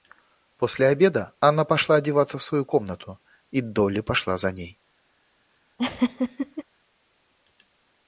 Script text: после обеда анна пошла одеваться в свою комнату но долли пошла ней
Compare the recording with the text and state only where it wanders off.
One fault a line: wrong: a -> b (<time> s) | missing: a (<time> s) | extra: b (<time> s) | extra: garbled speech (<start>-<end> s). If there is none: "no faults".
wrong: но -> и (3.5 s)
extra: за (4.4 s)